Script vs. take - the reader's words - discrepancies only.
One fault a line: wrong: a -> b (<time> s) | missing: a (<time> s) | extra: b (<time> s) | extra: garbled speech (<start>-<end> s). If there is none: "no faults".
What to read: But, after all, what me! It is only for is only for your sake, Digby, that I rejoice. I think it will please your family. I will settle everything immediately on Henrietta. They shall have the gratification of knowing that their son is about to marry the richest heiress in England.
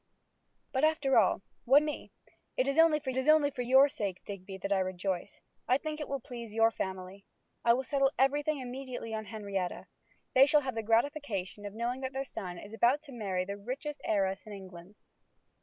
no faults